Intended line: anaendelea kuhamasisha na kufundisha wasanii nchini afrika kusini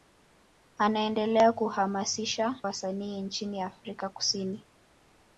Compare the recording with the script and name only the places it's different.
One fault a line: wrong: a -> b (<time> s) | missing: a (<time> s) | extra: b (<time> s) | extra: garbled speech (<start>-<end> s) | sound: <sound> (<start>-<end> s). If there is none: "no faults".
missing: na kufundisha (2.6 s)